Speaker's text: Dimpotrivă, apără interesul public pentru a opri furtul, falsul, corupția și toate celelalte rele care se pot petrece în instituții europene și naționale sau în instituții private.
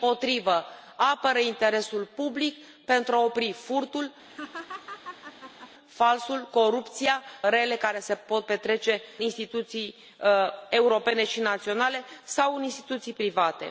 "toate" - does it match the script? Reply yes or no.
no